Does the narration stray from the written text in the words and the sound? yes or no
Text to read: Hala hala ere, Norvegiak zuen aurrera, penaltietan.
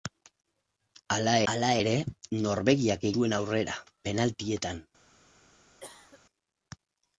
yes